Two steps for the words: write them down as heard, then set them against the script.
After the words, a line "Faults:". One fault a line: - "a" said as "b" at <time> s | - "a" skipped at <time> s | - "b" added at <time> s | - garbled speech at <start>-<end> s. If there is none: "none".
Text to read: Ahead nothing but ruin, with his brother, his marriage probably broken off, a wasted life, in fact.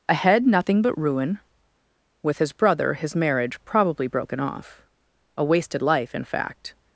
Ahead nothing but ruin, with his brother, his marriage probably broken off, a wasted life, in fact.
Faults:
none